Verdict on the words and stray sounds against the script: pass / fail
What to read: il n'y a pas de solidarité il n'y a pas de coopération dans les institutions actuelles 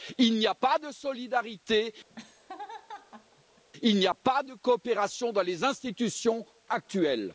fail